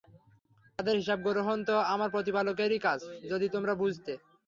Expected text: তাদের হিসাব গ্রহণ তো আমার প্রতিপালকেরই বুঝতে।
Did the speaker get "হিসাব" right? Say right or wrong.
right